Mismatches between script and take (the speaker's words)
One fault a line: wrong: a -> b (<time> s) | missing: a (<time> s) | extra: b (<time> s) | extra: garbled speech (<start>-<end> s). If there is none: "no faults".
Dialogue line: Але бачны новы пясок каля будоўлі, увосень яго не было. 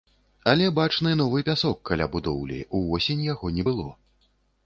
no faults